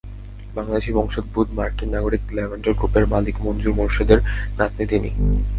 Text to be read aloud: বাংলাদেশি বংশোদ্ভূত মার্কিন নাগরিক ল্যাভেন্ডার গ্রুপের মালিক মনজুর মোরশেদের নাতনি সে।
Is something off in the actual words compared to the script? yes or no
yes